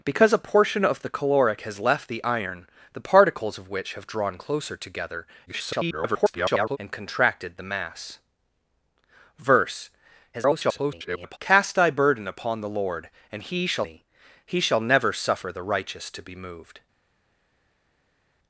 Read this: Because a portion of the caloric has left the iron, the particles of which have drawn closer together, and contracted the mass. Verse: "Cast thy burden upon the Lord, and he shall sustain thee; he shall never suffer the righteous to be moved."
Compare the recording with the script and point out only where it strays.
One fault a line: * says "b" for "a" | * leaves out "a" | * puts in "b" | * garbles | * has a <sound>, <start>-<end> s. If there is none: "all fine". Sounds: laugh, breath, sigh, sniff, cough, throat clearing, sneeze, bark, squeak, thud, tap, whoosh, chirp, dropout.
* garbles
* garbles
* leaves out "sustain"